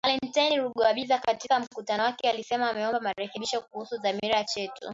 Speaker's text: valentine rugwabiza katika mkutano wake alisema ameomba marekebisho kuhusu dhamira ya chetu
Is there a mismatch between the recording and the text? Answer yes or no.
no